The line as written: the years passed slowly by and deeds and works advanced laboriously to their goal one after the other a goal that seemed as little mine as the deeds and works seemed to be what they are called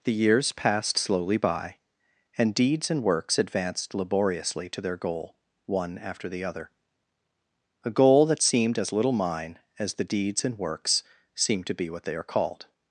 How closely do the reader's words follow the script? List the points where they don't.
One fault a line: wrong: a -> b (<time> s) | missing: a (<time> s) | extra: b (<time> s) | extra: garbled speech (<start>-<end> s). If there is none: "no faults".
no faults